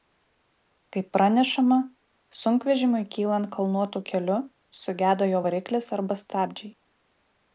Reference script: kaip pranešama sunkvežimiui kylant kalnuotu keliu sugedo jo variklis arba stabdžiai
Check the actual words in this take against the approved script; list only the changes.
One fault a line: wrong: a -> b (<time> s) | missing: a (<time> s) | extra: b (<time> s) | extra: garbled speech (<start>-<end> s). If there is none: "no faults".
no faults